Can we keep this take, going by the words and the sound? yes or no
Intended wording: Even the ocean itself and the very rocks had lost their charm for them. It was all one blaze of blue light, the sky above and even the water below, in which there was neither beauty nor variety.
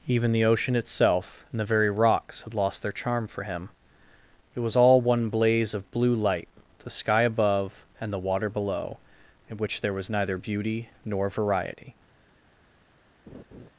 no